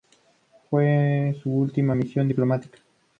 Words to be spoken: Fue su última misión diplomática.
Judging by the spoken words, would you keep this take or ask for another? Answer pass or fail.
pass